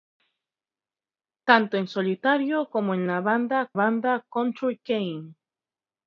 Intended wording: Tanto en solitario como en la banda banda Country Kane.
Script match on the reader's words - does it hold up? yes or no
yes